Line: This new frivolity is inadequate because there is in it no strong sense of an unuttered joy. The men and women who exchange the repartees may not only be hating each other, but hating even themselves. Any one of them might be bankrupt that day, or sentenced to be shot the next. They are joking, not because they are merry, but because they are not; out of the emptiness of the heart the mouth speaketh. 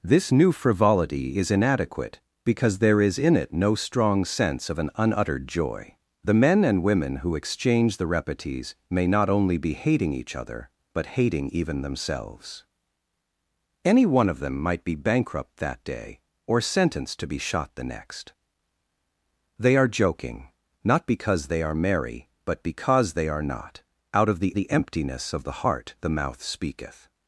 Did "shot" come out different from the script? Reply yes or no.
no